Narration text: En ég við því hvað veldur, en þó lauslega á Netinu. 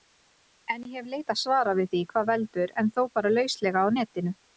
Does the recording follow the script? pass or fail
fail